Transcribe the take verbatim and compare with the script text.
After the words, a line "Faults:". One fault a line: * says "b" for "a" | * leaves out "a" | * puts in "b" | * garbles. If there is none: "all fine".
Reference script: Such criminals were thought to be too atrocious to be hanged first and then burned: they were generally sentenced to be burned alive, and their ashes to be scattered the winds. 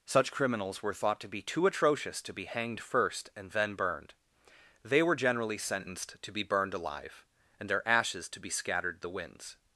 Such criminals were thought to be too atrocious to be hanged first and then burned: they were generally sentenced to be burned alive, and their ashes to be scattered the winds.
Faults:
all fine